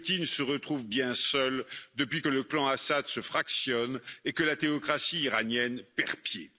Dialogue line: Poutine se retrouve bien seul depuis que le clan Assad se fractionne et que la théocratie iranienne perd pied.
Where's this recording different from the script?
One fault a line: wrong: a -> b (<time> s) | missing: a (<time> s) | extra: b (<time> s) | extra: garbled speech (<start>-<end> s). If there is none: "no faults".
no faults